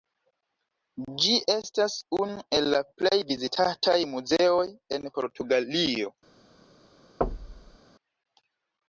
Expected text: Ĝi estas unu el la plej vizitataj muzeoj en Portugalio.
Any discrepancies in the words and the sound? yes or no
yes